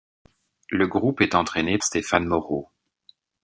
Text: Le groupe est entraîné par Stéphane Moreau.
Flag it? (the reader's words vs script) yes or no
yes